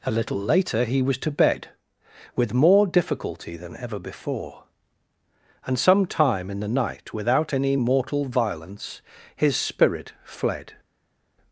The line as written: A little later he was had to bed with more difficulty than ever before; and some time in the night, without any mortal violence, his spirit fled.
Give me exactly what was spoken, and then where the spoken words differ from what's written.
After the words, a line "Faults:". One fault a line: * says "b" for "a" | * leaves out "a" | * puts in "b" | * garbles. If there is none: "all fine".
A little later he was to bed with more difficulty than ever before; and some time in the night, without any mortal violence, his spirit fled.
Faults:
* leaves out "had"